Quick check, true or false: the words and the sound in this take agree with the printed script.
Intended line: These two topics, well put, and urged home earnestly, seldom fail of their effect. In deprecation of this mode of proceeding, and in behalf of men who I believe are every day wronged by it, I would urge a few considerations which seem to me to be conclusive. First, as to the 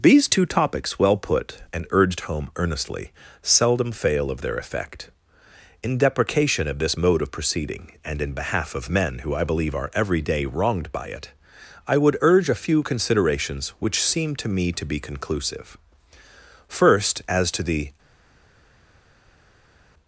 true